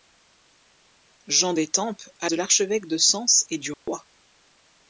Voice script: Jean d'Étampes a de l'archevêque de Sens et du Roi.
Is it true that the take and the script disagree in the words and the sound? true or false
true